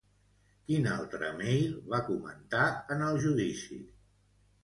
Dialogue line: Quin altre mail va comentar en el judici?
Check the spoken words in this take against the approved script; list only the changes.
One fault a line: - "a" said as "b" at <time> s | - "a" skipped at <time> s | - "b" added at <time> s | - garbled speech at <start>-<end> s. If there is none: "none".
none